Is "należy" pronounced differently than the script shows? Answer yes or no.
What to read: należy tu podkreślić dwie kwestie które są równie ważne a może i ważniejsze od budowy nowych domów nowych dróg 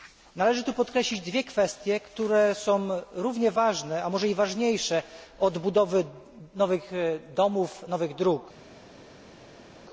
no